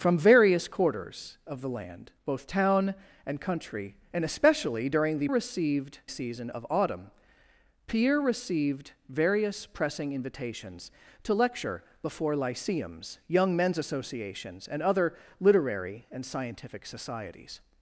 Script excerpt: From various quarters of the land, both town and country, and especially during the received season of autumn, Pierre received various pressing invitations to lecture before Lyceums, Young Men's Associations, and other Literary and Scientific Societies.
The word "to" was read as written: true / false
true